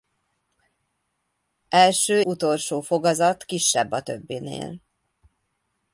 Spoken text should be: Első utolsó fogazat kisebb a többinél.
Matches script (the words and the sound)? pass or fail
pass